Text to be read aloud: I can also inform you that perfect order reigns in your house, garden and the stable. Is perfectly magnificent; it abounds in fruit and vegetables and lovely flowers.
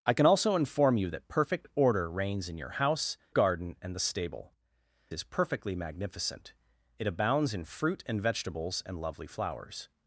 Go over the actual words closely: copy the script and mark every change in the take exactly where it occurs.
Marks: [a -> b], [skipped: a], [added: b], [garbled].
I can also inform you that perfect order reigns in your house, garden and the stable. Is perfectly magnificent; it abounds in fruit and vegetables and lovely flowers.